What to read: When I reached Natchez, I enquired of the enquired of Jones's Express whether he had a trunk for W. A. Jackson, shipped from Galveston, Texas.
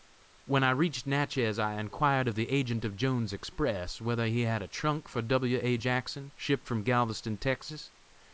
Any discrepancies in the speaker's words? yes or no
yes